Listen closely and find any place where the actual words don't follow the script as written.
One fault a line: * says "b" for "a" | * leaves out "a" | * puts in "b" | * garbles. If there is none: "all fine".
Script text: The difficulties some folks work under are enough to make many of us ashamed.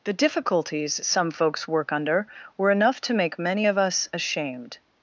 * says "were" for "are"